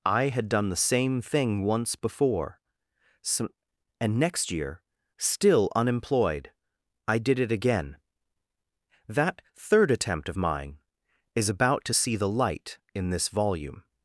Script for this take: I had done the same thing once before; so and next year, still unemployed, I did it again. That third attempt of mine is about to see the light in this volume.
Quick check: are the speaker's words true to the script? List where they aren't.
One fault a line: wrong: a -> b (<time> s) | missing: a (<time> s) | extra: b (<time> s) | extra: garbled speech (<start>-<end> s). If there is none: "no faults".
no faults